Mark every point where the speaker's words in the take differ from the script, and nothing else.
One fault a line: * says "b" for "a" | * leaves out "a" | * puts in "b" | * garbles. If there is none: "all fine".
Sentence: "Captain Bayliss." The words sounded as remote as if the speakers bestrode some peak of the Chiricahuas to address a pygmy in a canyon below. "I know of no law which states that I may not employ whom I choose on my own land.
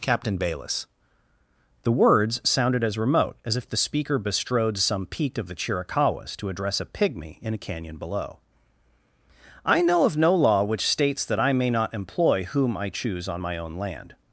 * says "speaker" for "speakers"